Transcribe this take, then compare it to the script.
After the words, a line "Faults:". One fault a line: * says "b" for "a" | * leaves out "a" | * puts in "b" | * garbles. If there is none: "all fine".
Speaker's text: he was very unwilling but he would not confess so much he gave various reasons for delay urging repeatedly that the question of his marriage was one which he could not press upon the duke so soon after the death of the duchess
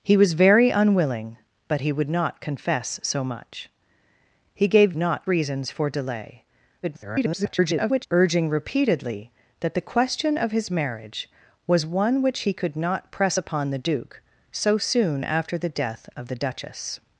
he was very unwilling but he would not confess so much he gave not reasons for delay [garbled] urging repeatedly that the question of his marriage was one which he could not press upon the duke so soon after the death of the duchess
Faults:
* says "not" for "various"
* garbles